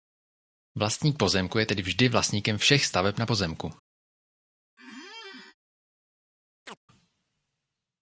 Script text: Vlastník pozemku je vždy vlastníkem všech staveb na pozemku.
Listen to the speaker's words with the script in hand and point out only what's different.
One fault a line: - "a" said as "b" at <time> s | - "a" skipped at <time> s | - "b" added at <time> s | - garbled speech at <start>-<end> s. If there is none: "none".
- "tedy" added at 1.6 s